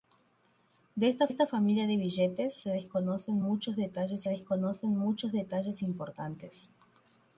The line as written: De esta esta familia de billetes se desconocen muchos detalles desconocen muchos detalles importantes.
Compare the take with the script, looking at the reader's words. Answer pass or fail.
pass